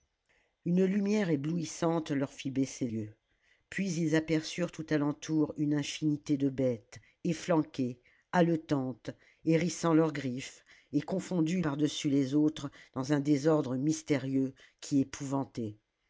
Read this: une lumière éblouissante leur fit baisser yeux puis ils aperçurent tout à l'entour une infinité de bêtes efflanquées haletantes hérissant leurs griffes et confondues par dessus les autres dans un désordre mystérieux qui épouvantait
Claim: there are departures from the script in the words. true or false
false